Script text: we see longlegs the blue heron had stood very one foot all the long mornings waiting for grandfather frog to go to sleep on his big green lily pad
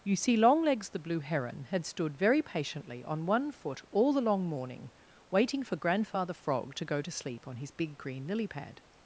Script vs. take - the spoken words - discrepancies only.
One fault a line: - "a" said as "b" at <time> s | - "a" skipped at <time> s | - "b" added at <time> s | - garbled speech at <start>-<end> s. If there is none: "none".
- "we" said as "you" at 0.0 s
- "patiently on" added at 2.4 s
- "mornings" said as "morning" at 4.5 s